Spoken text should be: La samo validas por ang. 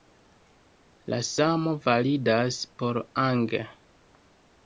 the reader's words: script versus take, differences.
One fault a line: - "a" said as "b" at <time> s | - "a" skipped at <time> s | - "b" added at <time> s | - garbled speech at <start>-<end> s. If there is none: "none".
none